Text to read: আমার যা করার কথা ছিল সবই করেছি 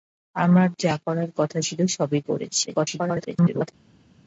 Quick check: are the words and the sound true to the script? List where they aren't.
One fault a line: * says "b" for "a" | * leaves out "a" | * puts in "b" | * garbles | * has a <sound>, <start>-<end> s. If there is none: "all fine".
* garbles